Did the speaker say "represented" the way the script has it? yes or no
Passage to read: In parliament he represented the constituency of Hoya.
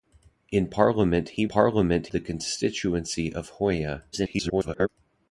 no